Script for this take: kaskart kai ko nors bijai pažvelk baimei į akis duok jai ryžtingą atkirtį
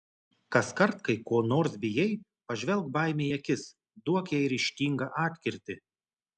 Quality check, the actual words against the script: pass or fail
pass